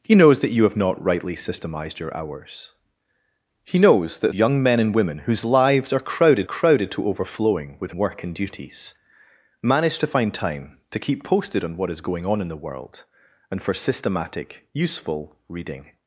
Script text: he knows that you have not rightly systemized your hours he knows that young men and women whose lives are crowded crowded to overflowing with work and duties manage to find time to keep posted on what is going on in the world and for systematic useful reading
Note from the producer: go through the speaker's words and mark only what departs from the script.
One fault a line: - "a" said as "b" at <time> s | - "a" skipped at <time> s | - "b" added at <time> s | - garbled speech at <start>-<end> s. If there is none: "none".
none